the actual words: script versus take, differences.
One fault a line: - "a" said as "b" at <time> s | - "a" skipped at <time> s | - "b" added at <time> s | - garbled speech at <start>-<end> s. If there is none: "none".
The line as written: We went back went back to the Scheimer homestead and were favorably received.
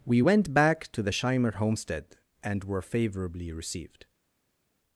- "went back" skipped at 0.9 s